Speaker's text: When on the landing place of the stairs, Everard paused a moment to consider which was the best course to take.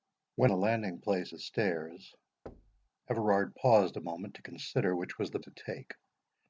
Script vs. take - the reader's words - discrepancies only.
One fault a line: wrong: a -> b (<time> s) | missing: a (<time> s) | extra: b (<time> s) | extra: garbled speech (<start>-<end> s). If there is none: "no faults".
missing: on (0.5 s)
missing: of (1.3 s)
missing: best course (5.4 s)